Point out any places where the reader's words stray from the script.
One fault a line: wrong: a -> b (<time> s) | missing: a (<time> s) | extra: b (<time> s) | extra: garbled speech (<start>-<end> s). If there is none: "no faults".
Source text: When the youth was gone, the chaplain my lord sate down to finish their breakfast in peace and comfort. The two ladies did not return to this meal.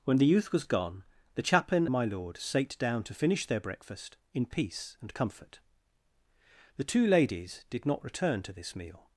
no faults